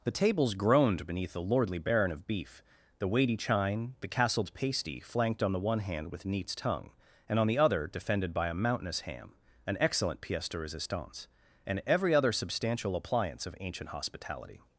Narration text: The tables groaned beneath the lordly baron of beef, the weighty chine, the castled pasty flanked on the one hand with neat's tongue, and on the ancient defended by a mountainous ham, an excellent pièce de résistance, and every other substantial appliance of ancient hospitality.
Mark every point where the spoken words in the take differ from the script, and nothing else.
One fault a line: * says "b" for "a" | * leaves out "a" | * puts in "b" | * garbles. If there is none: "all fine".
* says "other" for "ancient"